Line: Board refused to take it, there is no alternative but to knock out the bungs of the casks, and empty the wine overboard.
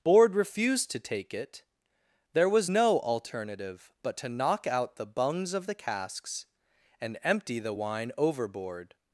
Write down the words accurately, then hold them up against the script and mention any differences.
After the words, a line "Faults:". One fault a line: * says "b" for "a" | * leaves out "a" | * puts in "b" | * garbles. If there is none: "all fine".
Board refused to take it, there was no alternative but to knock out the bungs of the casks, and empty the wine overboard.
Faults:
* says "was" for "is"